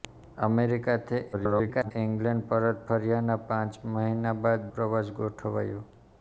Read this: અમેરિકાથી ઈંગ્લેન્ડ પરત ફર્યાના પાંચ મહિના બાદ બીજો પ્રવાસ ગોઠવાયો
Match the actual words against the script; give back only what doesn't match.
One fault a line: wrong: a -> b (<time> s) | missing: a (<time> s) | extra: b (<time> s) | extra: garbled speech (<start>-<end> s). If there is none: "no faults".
extra: garbled speech (1.3-1.9 s)
missing: બીજો (4.7 s)